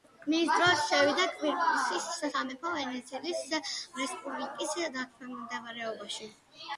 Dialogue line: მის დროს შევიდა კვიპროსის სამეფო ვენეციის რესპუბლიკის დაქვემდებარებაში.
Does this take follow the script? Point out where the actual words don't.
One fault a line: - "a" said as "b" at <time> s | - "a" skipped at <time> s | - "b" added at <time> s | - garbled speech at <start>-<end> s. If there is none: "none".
none